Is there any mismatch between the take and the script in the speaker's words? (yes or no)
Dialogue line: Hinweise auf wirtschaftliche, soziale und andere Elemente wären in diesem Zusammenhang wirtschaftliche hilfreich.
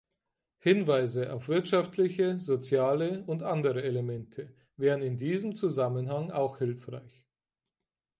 yes